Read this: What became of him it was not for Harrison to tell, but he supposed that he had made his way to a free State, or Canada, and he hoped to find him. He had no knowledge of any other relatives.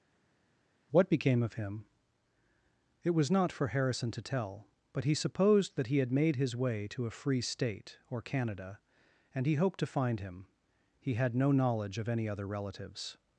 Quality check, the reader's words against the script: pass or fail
pass